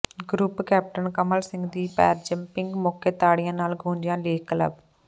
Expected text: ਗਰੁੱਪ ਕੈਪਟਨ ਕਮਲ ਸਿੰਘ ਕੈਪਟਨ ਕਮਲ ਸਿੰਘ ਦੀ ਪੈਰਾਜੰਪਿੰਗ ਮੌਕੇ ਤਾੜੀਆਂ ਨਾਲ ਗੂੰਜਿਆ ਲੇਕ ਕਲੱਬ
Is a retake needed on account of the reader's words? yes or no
yes